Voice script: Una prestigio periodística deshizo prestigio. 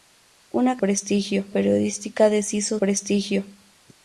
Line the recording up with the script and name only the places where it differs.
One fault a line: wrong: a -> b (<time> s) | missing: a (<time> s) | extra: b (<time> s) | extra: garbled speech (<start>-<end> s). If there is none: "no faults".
no faults